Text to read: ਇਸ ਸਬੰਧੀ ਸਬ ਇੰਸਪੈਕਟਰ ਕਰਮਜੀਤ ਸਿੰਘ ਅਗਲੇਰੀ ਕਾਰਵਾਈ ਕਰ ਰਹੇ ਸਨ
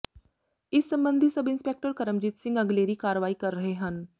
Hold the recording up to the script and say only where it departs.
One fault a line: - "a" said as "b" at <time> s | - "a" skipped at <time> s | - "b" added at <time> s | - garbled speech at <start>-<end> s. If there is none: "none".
- "ਸਨ" said as "ਹਨ" at 3.8 s